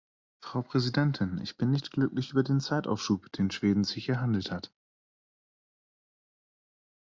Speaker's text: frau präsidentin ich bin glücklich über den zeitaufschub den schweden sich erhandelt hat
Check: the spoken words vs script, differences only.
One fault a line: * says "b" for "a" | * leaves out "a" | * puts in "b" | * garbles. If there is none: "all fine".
* puts in "nicht"